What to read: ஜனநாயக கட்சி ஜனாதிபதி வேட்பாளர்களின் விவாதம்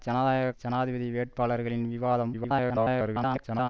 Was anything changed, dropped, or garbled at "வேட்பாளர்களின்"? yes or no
no